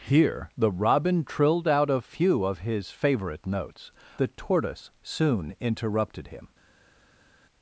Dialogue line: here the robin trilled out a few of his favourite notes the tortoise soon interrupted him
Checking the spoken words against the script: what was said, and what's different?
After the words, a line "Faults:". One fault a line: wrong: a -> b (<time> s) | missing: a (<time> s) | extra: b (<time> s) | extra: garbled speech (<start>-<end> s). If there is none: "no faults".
here the robin trilled out a few of his favourite notes the tortoise soon interrupted him
Faults:
no faults